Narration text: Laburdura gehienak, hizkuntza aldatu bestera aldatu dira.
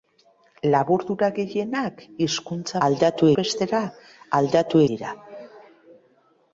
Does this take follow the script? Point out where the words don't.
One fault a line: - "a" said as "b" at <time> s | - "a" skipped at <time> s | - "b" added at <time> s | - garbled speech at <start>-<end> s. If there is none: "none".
none